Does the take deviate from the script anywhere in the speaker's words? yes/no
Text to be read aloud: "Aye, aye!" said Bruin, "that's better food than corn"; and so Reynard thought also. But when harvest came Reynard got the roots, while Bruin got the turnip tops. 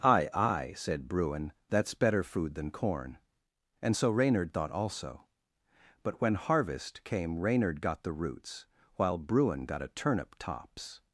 yes